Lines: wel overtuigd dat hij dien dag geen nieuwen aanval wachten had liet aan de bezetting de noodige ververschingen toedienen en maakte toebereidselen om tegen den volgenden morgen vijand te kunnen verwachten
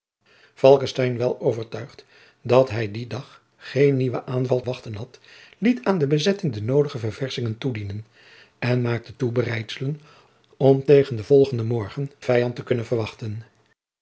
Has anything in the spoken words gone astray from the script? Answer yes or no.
no